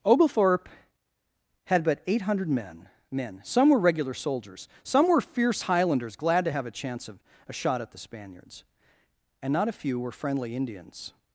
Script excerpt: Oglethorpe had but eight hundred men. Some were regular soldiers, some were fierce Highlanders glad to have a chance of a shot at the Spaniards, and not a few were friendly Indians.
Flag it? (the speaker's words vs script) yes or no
yes